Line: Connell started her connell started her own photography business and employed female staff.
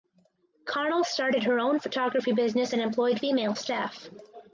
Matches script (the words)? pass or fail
fail